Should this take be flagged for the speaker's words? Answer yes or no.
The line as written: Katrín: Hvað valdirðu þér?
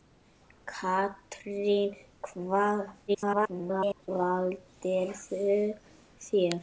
yes